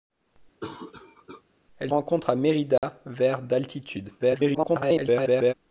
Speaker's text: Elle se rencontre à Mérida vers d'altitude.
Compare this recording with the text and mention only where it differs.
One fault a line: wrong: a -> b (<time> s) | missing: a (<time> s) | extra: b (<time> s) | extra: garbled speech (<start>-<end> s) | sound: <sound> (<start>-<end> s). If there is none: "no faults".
sound: cough (0.6-1.4 s)
missing: se (1.9 s)
sound: dropout (2.8-2.8 s)
extra: garbled speech (4.2-5.5 s)